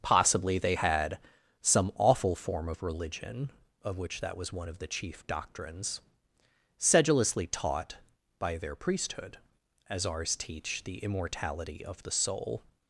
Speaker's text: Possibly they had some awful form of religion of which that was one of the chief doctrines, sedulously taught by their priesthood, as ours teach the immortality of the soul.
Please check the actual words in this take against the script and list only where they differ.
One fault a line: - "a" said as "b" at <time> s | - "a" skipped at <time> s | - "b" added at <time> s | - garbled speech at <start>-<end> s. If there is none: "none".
none